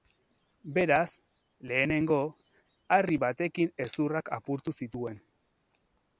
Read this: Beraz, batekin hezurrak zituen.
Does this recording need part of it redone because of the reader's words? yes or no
yes